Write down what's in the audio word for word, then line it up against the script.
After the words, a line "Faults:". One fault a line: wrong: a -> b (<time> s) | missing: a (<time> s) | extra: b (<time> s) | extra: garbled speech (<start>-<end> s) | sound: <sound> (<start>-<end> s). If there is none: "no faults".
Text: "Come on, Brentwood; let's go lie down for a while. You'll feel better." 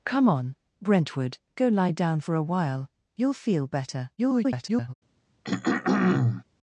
"Come on, Brentwood; go lie down for a while. You'll feel better." [garbled]
Faults:
missing: let's (1.4 s)
extra: garbled speech (4.2-4.9 s)
sound: throat clearing (5.4-6.4 s)